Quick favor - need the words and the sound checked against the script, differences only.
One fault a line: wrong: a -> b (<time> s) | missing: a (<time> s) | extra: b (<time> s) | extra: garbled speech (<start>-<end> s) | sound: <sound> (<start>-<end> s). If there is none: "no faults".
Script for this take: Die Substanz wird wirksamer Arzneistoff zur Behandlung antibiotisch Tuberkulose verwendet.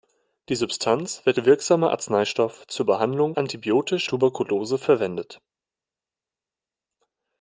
no faults